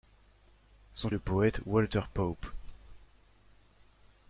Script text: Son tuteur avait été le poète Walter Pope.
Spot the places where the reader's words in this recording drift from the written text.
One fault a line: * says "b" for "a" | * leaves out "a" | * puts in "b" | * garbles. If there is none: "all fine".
* leaves out "tuteur avait été"